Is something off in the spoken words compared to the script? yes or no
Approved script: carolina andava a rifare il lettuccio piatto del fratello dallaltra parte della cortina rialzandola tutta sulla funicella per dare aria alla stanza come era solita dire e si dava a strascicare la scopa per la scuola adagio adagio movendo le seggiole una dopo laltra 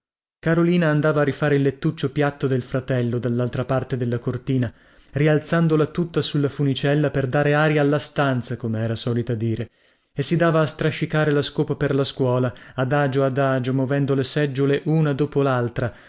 no